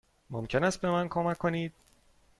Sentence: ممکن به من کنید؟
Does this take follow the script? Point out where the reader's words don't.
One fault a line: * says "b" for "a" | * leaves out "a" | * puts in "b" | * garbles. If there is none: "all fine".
* puts in "است"
* puts in "کمک"